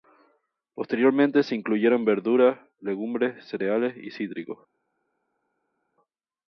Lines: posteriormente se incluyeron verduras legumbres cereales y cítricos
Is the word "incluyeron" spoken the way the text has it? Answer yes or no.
yes